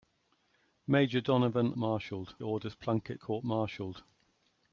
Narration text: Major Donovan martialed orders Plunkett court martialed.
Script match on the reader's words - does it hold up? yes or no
yes